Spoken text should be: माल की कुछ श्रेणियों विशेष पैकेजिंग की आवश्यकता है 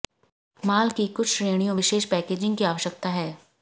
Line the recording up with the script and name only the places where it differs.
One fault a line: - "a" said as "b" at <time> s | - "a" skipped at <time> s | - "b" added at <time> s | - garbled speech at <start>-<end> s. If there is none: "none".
none